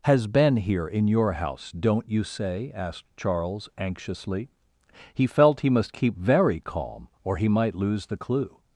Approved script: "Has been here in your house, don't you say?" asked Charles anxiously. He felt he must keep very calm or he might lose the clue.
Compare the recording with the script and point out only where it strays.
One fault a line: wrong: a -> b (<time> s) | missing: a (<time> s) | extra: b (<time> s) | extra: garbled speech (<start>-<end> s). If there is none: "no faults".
no faults